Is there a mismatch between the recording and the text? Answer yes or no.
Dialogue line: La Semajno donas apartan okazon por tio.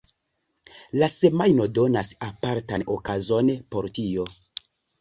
no